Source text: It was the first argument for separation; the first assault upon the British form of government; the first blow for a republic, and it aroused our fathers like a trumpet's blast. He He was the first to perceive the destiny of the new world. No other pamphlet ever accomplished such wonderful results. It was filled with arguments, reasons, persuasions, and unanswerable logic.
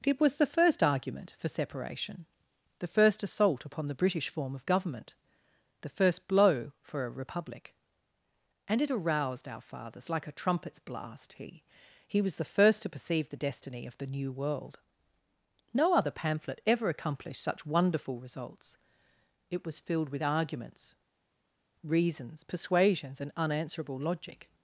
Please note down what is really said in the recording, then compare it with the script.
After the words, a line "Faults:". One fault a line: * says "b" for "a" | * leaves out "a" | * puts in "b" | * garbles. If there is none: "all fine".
It was the first argument for separation; the first assault upon the British form of government; the first blow for a republic, and it aroused our fathers like a trumpet's blast. He He was the first to perceive the destiny of the new world. No other pamphlet ever accomplished such wonderful results. It was filled with arguments, reasons, persuasions, and unanswerable logic.
Faults:
all fine